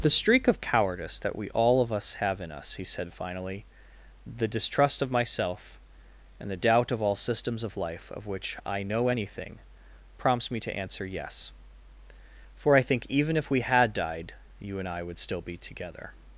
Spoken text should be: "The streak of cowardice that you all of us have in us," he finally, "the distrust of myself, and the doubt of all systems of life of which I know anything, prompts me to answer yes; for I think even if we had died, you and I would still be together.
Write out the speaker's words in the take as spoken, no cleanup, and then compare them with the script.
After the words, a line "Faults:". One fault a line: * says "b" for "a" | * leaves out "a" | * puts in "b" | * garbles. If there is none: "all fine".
"The streak of cowardice that we all of us have in us," he said finally, "the distrust of myself, and the doubt of all systems of life of which I know anything, prompts me to answer yes; for I think even if we had died, you and I would still be together.
Faults:
* says "we" for "you"
* puts in "said"